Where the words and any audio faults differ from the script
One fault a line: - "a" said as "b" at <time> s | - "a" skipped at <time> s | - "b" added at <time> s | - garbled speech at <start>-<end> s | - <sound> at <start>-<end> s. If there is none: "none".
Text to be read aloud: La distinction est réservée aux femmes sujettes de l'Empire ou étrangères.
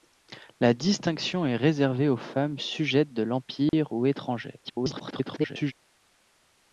- dropout at 3.7-3.7 s
- garbled speech at 4.6-5.7 s